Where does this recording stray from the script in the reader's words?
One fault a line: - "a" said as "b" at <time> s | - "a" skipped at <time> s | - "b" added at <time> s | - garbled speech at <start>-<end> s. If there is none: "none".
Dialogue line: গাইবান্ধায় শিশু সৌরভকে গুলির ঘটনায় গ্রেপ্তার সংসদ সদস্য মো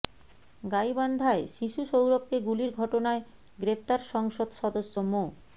none